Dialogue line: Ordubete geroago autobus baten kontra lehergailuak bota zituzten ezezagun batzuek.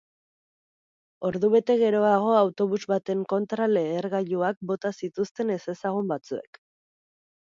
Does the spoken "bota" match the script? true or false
true